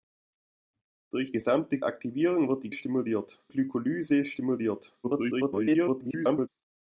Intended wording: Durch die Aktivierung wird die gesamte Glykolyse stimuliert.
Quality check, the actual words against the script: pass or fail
fail